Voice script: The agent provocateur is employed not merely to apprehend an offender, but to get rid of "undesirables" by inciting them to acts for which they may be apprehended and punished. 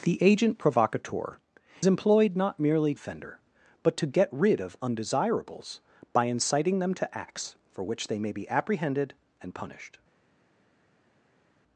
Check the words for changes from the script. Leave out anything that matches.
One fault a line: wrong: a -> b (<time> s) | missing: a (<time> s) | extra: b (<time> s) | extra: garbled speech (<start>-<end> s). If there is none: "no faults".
missing: is (1.4 s)
missing: to apprehend an (2.9 s)